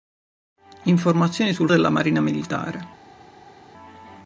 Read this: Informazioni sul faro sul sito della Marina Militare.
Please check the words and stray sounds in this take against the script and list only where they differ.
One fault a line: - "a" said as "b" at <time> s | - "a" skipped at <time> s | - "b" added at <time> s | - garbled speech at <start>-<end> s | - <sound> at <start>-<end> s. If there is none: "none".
- "faro sul sito" skipped at 1.7 s